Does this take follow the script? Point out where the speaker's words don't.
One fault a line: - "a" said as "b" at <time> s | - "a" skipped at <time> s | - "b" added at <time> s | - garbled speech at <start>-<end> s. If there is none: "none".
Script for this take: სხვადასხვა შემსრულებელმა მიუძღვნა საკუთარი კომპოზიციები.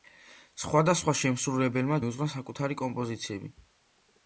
none